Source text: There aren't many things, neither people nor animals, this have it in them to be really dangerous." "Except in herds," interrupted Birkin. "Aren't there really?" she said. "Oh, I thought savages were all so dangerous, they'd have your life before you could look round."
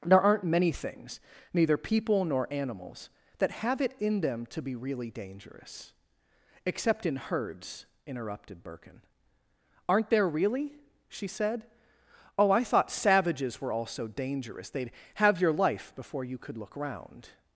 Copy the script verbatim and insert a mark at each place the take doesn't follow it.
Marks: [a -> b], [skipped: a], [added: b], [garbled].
There aren't many things, neither people nor animals, [this -> that] have it in them to be really dangerous." "Except in herds," interrupted Birkin. "Aren't there really?" she said. "Oh, I thought savages were all so dangerous, they'd have your life before you could look round."